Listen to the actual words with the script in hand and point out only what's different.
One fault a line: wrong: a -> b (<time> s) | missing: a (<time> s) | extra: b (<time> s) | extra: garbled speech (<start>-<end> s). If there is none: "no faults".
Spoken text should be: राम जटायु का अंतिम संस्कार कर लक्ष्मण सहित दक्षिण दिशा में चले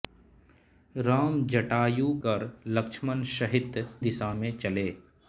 missing: का अंतिम संस्कार (2.1 s)
missing: दक्षिण (3.8 s)